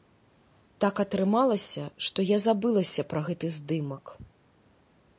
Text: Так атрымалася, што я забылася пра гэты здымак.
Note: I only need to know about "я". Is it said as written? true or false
true